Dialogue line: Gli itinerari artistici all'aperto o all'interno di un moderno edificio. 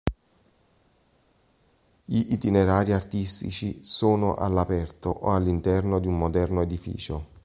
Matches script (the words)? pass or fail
fail